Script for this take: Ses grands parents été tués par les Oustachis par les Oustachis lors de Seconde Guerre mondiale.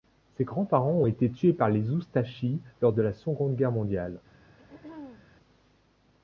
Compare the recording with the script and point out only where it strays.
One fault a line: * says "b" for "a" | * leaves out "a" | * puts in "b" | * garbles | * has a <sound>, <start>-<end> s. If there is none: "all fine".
* puts in "ont"
* leaves out "par les Oustachis"
* puts in "la"
* has a throat clearing, 4.6-5.3 s